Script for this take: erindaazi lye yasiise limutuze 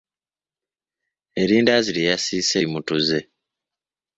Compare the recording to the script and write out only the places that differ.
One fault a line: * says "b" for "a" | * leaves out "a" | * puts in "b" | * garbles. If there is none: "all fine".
all fine